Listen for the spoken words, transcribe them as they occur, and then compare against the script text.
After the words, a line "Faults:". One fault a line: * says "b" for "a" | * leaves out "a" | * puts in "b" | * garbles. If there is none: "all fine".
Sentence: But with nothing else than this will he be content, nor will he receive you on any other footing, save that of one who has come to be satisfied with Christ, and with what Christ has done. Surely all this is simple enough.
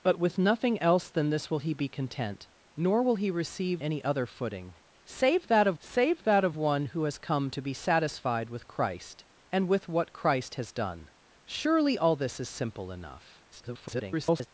But with nothing else than this will he be content, nor will he receive any other footing, save that of save that of one who has come to be satisfied with Christ, and with what Christ has done. Surely all this is simple enough. [garbled]
Faults:
* leaves out "you on"
* puts in "save that of"
* garbles